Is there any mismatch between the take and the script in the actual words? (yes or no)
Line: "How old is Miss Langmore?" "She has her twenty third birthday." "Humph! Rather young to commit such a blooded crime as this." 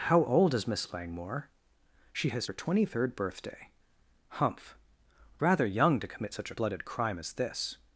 no